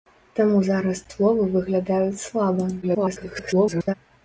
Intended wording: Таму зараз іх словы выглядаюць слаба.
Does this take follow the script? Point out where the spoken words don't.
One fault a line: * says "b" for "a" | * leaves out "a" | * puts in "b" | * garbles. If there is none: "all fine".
* leaves out "іх"
* garbles